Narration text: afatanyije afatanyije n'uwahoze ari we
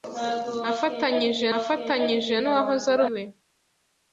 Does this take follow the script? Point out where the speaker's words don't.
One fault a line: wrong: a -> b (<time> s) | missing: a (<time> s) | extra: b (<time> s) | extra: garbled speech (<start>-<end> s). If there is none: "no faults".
no faults